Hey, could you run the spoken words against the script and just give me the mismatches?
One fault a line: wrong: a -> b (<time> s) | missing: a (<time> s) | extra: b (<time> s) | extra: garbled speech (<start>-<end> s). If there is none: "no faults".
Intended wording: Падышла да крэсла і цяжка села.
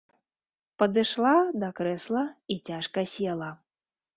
no faults